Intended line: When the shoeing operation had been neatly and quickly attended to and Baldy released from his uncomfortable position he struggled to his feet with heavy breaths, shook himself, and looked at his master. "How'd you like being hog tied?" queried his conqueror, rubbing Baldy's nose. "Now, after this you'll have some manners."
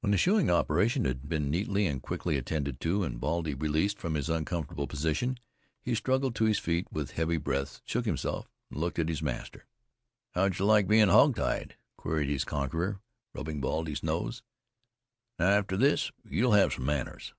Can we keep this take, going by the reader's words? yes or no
yes